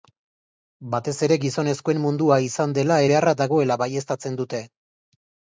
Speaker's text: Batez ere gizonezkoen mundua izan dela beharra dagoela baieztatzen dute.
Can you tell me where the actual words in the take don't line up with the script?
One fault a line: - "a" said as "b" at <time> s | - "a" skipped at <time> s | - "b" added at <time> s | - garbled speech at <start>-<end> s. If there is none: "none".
none